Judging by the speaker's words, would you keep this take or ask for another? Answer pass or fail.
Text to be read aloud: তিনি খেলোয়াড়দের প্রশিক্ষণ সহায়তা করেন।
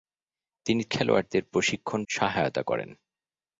pass